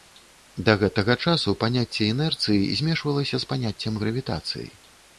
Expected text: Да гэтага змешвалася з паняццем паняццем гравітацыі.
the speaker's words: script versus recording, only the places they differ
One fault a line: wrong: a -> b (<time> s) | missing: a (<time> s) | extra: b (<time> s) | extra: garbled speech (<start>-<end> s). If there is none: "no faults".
extra: часу паняцце інерцыі (1.2 s)
missing: паняццем (3.9 s)